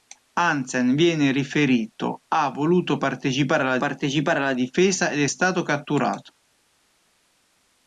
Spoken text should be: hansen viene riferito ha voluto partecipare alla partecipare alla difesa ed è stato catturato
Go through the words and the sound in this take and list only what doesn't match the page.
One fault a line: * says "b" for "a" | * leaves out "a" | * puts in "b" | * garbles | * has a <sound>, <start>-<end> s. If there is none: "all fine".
all fine